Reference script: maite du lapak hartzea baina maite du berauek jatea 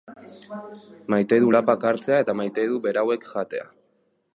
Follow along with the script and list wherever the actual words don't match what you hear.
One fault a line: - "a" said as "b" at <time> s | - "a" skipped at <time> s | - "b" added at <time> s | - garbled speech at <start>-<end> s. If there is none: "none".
- "baina" said as "eta" at 2.3 s